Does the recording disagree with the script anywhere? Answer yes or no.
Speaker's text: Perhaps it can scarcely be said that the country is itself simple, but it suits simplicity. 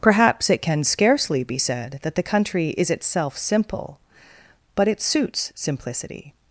no